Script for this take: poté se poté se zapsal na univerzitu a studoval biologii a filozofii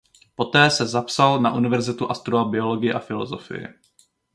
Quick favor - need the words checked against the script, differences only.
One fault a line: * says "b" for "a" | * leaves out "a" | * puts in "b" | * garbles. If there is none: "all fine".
* leaves out "poté se"